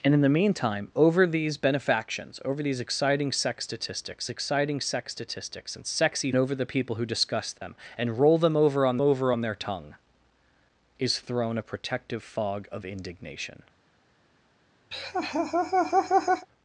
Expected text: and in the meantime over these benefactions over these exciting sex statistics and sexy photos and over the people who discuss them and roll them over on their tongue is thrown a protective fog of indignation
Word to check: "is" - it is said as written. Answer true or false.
true